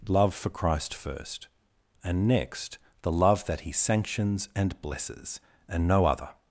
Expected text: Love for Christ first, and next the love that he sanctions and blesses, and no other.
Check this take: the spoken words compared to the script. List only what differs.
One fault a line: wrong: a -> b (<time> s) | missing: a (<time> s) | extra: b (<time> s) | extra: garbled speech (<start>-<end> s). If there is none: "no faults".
no faults